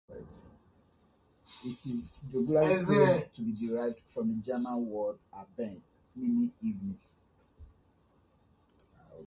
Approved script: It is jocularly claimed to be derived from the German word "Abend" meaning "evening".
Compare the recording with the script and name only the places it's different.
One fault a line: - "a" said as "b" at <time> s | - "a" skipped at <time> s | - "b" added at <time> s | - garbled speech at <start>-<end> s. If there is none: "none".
none